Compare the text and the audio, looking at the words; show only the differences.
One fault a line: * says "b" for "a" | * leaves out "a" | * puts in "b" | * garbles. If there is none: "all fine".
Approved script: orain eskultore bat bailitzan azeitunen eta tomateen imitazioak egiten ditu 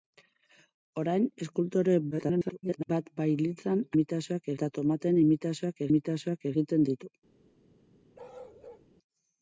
* garbles
* says "imitazioak" for "azeitunen"
* puts in "imitazioak"